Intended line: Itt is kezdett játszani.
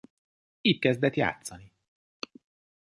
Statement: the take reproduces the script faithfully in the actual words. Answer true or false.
false